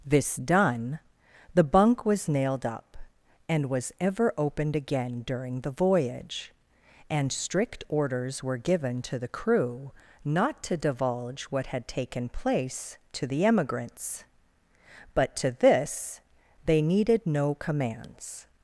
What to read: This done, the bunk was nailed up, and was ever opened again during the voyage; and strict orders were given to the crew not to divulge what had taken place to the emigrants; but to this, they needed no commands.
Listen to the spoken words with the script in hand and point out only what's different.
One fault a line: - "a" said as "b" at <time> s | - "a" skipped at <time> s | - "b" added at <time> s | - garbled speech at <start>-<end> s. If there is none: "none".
none